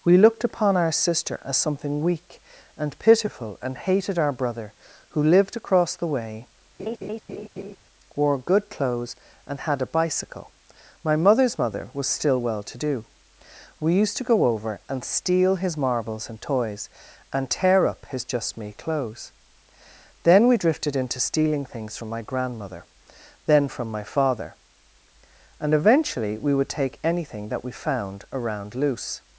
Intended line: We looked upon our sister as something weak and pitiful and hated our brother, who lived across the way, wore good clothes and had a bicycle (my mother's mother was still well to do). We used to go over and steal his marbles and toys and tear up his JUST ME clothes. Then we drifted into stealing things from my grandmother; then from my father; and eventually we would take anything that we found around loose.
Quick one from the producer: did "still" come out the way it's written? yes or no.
yes